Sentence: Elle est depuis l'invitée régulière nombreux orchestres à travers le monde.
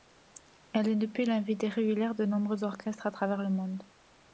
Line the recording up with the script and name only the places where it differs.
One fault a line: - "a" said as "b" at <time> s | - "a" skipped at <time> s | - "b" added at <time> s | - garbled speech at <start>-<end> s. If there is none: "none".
- "de" added at 2.1 s